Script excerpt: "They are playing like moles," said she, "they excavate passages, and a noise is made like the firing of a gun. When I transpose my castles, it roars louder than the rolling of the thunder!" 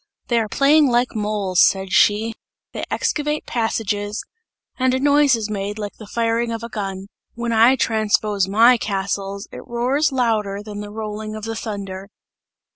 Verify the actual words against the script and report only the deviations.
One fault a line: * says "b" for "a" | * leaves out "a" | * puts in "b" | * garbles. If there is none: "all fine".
all fine